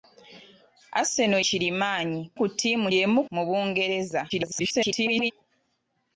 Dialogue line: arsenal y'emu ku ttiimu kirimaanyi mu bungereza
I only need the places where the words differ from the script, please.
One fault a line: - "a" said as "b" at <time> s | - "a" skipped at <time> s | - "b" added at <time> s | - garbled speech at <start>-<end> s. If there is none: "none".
- "y'emu" said as "kirimaanyi" at 1.5 s
- "kirimaanyi" said as "y'emu" at 2.9 s
- garbled speech at 4.3-5.3 s